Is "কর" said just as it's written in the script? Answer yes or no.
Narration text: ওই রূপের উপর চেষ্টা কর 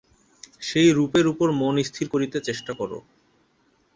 yes